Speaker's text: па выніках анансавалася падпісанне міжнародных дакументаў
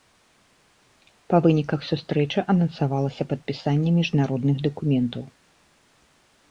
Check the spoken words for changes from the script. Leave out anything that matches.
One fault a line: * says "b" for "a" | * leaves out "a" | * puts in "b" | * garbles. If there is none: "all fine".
* puts in "сустрэчы"